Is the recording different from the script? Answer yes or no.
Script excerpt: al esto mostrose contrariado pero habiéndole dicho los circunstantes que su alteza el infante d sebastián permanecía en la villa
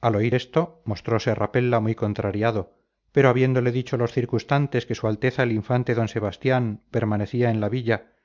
yes